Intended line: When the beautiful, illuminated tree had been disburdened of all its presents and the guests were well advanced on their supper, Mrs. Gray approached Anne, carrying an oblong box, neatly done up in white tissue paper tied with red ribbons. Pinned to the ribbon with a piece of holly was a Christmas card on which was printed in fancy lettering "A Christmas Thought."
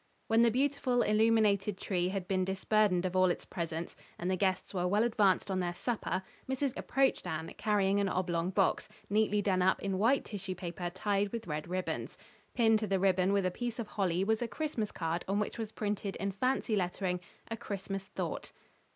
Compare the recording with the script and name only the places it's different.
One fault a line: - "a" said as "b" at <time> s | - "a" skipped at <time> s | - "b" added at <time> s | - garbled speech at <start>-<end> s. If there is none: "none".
- "Gray" skipped at 6.8 s